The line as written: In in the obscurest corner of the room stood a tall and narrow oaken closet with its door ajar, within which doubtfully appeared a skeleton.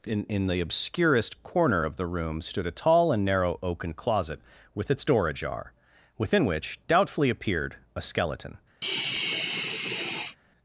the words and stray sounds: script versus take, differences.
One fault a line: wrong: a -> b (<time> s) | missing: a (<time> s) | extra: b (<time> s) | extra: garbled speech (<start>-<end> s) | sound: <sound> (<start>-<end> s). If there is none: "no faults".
sound: sigh (8.8-10.4 s)